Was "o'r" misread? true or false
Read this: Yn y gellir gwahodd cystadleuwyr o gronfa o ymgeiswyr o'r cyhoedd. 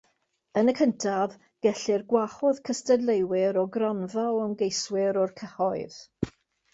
false